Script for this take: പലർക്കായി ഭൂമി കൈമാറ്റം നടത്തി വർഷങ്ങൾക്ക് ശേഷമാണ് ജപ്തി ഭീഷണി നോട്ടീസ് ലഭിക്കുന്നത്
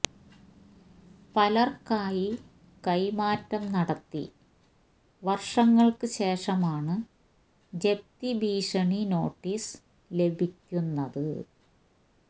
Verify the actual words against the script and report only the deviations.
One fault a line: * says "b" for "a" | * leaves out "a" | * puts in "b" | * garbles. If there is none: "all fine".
* leaves out "ഭൂമി"